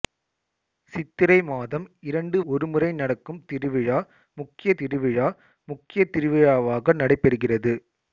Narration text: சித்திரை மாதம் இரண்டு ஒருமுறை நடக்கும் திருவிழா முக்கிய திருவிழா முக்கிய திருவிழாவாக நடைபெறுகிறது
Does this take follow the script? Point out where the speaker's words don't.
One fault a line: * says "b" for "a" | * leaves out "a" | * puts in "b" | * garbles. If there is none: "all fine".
all fine